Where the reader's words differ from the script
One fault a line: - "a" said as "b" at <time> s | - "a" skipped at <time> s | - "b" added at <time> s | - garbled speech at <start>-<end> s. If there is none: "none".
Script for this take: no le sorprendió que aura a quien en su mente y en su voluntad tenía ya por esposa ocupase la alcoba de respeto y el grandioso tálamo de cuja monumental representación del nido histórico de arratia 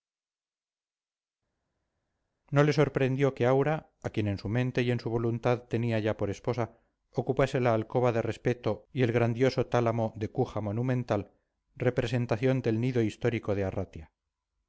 none